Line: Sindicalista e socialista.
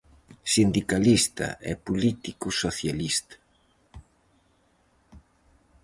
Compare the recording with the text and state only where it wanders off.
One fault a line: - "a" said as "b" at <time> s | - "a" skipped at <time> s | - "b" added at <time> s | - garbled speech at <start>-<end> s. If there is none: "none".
- "político" added at 1.9 s